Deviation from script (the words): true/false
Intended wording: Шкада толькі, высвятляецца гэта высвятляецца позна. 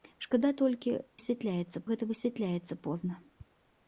false